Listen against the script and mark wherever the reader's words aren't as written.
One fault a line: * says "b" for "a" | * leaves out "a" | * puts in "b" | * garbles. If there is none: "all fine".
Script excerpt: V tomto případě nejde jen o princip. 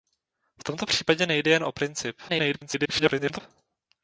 * garbles